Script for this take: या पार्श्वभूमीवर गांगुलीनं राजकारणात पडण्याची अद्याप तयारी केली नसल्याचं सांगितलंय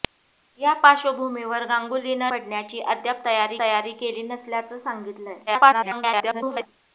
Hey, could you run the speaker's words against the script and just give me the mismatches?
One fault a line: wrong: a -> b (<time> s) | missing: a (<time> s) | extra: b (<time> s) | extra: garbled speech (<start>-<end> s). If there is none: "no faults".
missing: राजकारणात (2.3 s)
extra: तयारी (3.6 s)
extra: garbled speech (5.5-6.7 s)